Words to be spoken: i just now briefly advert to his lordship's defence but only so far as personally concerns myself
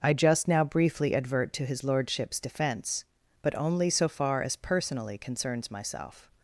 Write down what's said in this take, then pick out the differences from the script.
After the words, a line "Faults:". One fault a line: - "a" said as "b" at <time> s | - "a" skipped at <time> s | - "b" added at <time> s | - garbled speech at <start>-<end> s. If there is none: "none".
i just now briefly advert to his lordship's defence but only so far as personally concerns myself
Faults:
none